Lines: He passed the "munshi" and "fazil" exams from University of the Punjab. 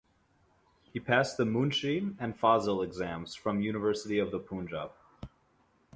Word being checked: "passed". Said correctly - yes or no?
yes